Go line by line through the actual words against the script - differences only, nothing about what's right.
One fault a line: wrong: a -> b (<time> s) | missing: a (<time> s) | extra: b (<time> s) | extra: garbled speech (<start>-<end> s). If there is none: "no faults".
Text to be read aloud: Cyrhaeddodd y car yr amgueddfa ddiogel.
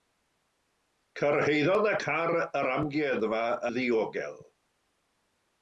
no faults